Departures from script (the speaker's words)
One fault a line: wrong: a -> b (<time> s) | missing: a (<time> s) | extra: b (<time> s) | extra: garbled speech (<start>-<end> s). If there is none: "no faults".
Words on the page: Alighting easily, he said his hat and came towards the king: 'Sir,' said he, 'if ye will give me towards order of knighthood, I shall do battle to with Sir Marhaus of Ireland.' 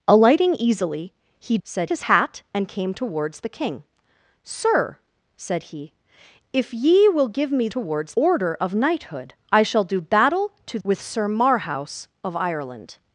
no faults